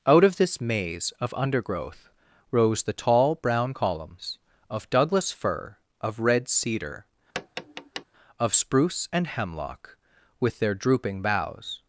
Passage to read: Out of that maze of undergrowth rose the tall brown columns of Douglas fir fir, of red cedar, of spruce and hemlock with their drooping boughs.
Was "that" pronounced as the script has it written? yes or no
no